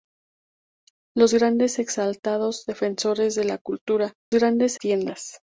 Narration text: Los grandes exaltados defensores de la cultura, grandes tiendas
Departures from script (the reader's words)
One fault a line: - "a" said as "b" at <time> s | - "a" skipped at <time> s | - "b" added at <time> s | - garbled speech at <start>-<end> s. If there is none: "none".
none